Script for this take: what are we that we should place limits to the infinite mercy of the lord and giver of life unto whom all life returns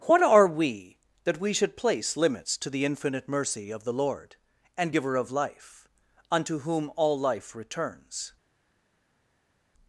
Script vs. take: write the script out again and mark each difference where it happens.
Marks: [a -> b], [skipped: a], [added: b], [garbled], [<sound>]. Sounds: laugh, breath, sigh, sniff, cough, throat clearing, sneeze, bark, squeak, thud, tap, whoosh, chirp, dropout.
what are we that we should place limits to the infinite mercy of the lord and giver of life unto whom all life returns